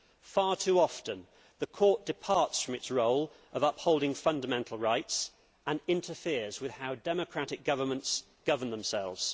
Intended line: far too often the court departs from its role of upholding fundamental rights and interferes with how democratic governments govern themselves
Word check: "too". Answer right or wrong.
right